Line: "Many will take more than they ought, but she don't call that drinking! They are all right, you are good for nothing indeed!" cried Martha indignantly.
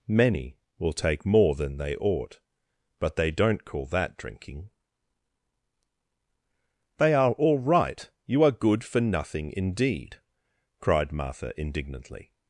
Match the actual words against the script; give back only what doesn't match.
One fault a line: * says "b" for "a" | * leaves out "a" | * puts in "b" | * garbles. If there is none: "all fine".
* says "they" for "she"